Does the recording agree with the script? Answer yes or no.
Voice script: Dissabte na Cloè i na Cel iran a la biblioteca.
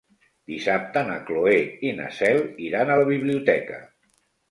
yes